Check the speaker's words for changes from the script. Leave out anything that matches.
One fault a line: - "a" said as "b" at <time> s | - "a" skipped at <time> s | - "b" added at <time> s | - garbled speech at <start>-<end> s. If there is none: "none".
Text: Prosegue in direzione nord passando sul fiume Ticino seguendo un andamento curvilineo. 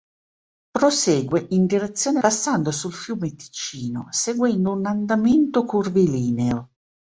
- "nord" skipped at 2.2 s